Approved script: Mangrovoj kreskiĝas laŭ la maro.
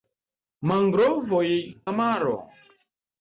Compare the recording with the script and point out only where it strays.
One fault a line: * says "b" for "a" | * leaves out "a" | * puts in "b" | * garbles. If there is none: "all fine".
* leaves out "kreskiĝas laŭ"